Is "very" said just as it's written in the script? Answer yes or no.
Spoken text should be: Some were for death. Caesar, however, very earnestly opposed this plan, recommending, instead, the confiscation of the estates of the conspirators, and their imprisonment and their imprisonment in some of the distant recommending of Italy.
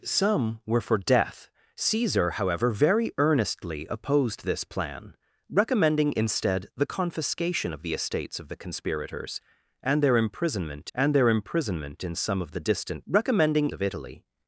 yes